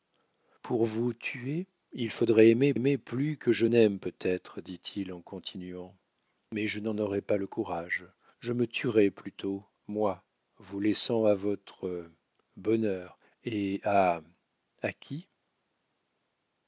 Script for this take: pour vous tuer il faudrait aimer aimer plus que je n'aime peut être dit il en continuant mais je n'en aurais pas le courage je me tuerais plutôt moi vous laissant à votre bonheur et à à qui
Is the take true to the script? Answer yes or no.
yes